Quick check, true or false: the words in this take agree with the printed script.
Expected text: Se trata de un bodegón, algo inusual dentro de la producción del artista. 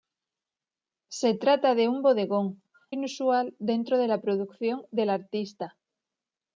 false